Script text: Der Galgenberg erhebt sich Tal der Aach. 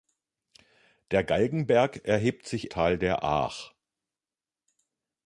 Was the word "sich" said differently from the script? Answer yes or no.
no